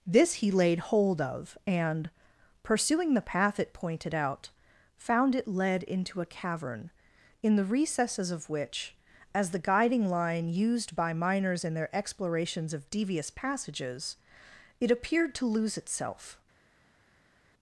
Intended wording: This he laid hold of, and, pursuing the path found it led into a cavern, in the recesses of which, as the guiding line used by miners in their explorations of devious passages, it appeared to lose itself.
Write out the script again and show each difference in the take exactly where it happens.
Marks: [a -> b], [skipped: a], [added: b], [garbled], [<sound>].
This he laid hold of, and, pursuing the path [added: it pointed out] found it led into a cavern, in the recesses of which, as the guiding line used by miners in their explorations of devious passages, it appeared to lose itself.